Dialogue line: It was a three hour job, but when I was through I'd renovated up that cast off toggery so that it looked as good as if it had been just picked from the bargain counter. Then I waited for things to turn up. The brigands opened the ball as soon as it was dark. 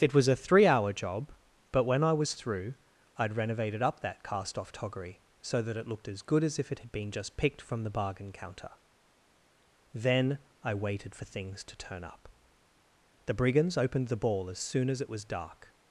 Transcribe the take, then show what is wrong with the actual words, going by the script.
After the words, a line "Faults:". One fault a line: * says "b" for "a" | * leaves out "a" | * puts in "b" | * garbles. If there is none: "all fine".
It was a three hour job, but when I was through I'd renovated up that cast off toggery so that it looked as good as if it had been just picked from the bargain counter. Then I waited for things to turn up. The brigands opened the ball as soon as it was dark.
Faults:
all fine